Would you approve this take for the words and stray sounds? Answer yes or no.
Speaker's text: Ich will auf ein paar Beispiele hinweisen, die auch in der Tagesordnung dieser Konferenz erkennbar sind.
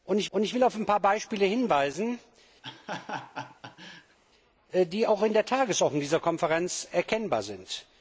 no